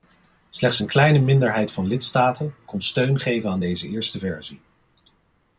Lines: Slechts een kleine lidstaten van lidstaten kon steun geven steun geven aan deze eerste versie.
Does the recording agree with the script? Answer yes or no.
no